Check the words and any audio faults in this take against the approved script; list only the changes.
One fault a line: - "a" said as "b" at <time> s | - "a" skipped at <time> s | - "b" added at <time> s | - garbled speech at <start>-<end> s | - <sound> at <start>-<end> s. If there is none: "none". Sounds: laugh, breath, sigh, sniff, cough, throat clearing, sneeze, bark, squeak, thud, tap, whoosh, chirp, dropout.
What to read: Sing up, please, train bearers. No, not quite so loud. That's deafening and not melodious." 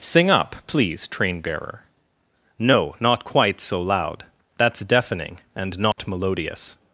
- "bearers" said as "bearer" at 1.4 s
- dropout at 5.9-6.0 s